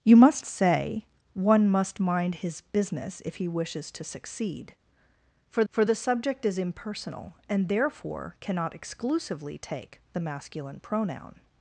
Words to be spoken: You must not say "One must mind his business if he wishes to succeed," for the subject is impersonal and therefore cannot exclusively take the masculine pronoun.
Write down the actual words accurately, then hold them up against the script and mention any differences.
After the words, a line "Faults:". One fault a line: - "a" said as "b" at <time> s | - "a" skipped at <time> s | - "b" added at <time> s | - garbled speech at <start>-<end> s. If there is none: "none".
You must say "One must mind his business if he wishes to succeed," for for the subject is impersonal and therefore cannot exclusively take the masculine pronoun.
Faults:
- "not" skipped at 0.4 s
- "for" added at 5.7 s